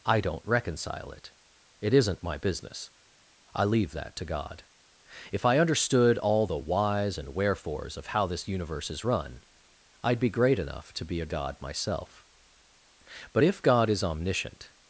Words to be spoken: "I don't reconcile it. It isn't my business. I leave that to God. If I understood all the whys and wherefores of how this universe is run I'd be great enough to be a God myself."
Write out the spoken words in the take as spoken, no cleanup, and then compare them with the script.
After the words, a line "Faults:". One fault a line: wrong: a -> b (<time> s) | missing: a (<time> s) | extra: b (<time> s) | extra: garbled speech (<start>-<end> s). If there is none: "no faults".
"I don't reconcile it. It isn't my business. I leave that to God. If I understood all the whys and wherefores of how this universe is run I'd be great enough to be a God myself." "But if God is omniscient
Faults:
extra: But if God is omniscient (13.3 s)